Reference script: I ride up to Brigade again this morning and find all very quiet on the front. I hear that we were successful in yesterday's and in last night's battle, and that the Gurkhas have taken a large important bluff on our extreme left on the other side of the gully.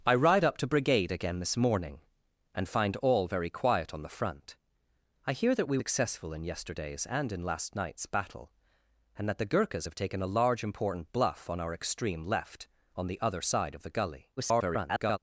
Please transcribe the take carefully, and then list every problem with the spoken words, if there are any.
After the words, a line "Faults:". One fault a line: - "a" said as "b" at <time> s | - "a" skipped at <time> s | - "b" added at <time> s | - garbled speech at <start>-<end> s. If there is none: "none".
I ride up to Brigade again this morning and find all very quiet on the front. I hear that we successful in yesterday's and in last night's battle, and that the Gurkhas have taken a large important bluff on our extreme left on the other side of the gully. [garbled]
Faults:
- "were" skipped at 5.8 s
- garbled speech at 14.4-15.2 s